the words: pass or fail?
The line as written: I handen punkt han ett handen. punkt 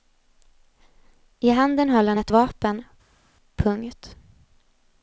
fail